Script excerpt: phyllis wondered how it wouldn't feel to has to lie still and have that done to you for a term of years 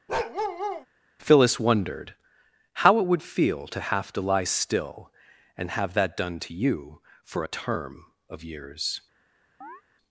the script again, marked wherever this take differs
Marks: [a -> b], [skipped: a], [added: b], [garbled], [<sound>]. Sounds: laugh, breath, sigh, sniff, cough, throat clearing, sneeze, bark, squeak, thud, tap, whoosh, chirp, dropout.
[bark] phyllis wondered how it [wouldn't -> would] feel to [has -> have] to lie still and have that done to you for a term of years [chirp]